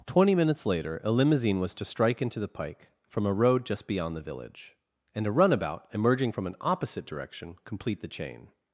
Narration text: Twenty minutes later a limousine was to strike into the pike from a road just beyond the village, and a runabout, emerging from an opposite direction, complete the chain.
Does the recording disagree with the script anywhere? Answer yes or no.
no